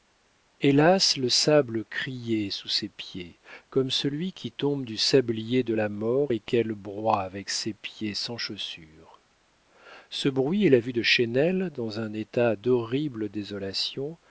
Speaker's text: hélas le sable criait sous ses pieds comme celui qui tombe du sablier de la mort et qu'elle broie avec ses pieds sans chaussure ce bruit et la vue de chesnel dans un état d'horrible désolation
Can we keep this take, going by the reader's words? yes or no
yes